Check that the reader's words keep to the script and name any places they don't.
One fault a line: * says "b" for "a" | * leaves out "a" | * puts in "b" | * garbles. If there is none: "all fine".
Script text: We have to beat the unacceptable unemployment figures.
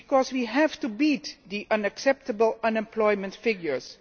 all fine